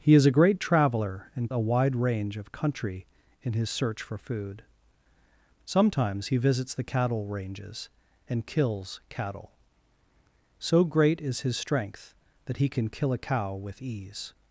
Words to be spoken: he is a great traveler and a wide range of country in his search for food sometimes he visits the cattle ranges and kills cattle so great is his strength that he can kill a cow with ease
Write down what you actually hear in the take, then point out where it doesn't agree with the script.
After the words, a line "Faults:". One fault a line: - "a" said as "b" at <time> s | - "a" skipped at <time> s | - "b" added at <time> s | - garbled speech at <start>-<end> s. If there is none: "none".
he is a great traveler and a wide range of country in his search for food sometimes he visits the cattle ranges and kills cattle so great is his strength that he can kill a cow with ease
Faults:
none